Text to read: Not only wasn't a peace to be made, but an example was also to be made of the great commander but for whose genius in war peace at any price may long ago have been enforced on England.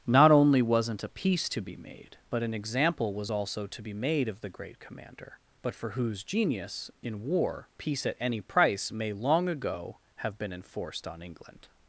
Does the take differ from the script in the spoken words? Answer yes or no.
no